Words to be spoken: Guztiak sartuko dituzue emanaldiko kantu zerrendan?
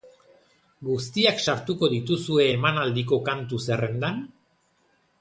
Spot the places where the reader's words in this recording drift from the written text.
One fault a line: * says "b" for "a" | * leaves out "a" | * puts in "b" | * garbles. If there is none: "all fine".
all fine